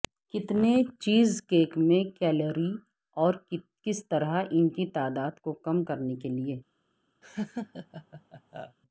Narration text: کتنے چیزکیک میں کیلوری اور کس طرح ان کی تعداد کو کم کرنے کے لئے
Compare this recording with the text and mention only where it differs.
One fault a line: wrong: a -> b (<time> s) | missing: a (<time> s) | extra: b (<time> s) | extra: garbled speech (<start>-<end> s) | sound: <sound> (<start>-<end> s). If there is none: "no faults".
sound: laugh (7.2-8.8 s)